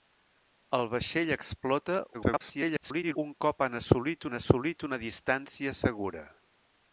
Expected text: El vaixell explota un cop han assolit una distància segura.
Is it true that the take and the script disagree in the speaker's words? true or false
true